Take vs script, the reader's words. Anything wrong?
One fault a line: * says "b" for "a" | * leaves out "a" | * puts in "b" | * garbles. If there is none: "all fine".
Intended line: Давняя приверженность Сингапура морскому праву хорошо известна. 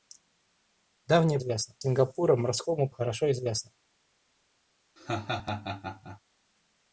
* says "известна" for "приверженность"
* leaves out "праву"